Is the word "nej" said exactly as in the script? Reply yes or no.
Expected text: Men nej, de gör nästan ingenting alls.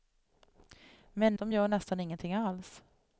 no